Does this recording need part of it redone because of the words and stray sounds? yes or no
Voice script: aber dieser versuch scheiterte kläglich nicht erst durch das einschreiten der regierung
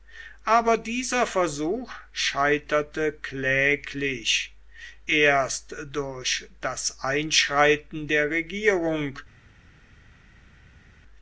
yes